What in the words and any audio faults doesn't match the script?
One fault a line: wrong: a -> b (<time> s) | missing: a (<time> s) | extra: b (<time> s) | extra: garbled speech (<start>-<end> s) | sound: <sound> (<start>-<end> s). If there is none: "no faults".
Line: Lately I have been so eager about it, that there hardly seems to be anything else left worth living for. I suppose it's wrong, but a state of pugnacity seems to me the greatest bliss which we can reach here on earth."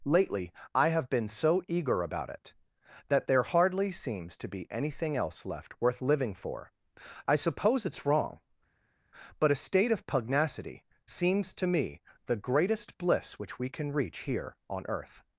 no faults